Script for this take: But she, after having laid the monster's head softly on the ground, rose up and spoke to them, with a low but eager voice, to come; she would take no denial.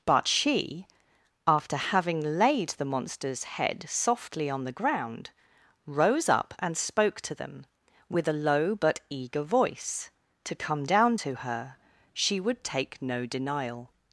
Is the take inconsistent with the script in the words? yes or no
yes